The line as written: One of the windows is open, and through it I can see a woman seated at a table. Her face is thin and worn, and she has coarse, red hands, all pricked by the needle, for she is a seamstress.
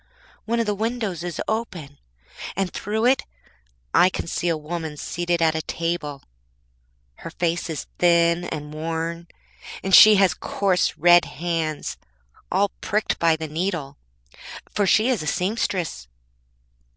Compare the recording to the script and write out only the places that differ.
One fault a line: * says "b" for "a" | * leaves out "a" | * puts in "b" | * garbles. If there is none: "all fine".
all fine